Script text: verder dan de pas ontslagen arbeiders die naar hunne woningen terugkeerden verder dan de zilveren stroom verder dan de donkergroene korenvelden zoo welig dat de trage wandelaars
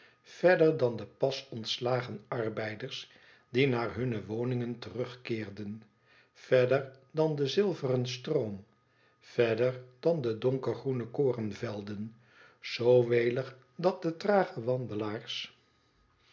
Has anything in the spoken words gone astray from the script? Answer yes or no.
no